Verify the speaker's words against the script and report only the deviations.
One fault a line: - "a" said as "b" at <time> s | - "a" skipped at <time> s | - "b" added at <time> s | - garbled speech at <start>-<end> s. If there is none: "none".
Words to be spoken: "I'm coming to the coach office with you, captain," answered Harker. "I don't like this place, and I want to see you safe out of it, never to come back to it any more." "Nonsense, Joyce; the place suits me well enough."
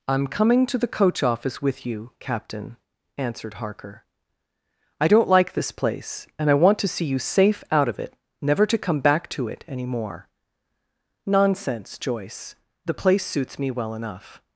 none